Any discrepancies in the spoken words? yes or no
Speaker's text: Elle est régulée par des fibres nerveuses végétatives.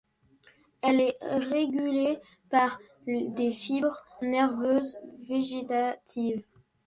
no